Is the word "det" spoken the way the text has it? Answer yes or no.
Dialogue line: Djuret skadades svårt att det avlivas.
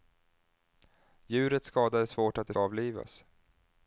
yes